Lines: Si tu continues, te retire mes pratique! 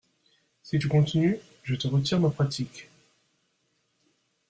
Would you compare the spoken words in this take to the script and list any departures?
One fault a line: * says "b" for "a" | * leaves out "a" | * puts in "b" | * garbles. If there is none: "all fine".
* puts in "je"
* says "ma" for "mes"